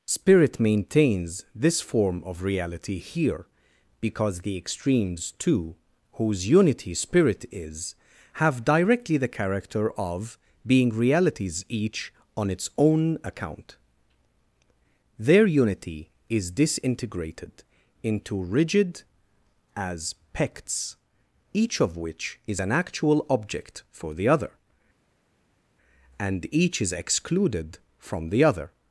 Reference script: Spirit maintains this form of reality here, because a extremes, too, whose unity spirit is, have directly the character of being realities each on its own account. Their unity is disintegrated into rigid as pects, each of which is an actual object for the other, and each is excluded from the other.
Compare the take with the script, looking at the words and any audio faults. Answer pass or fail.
fail